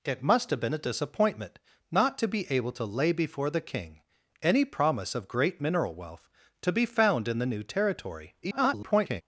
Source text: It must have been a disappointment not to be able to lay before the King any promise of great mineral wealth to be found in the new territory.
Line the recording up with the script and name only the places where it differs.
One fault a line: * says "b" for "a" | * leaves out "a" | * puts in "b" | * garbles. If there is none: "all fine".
* garbles